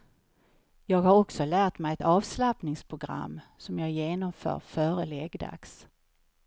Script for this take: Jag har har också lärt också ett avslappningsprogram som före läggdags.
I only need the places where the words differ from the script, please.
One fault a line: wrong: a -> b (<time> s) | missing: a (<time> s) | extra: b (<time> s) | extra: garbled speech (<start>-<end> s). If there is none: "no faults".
missing: har (1.1 s)
wrong: också -> mig (1.8 s)
extra: jag genomför (3.8 s)